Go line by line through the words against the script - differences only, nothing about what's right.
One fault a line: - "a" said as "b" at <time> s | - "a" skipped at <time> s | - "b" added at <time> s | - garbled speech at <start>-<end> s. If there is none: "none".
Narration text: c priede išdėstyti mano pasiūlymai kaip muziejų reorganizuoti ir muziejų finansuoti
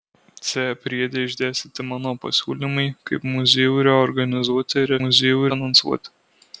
none